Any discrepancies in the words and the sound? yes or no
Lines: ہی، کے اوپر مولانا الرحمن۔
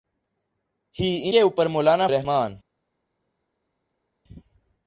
no